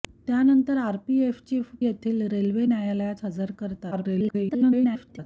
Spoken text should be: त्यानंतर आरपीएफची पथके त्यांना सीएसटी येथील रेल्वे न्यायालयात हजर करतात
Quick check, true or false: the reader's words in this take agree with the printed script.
false